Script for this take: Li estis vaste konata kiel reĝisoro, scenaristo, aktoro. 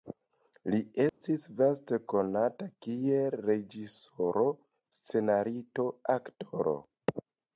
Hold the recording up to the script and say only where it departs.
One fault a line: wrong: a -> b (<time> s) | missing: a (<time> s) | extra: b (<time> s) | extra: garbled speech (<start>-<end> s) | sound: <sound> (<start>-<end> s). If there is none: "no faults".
sound: dropout (1.1-1.2 s)